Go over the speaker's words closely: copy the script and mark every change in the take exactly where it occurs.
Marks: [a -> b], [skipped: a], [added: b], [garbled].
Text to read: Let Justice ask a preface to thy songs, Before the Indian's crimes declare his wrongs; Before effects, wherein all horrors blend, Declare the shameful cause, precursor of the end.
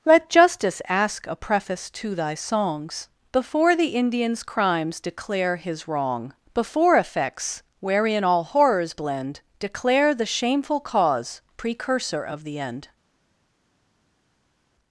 Let Justice ask a preface to thy songs, Before the Indian's crimes declare his [wrongs; -> wrong] Before effects, wherein all horrors blend, Declare the shameful cause, precursor of the end.